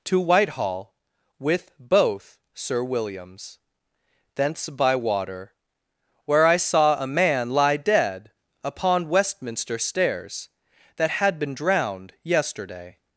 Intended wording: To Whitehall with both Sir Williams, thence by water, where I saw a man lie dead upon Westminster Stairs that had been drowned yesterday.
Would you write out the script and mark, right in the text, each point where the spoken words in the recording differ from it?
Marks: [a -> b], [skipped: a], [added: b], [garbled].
To Whitehall with both Sir Williams, thence by water, where I saw a man lie dead upon Westminster Stairs that had been drowned yesterday.